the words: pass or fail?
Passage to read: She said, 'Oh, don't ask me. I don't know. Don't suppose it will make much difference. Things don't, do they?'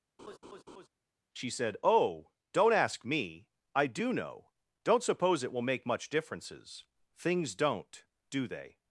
fail